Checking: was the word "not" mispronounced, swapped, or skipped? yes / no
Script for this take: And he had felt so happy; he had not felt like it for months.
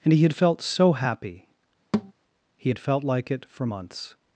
yes